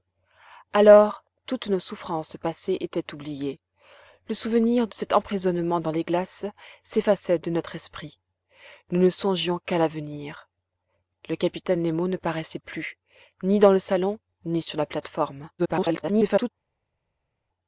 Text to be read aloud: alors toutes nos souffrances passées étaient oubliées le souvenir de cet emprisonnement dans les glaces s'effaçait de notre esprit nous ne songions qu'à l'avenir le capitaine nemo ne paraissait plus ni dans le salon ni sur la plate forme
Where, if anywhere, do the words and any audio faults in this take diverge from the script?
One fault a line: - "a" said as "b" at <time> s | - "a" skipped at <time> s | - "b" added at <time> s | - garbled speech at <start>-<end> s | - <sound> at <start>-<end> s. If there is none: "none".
- garbled speech at 15.6-16.5 s